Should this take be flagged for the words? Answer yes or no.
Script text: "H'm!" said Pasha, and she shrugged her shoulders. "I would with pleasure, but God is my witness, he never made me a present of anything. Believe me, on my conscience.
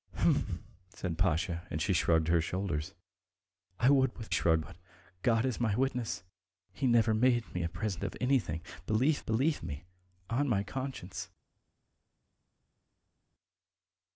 yes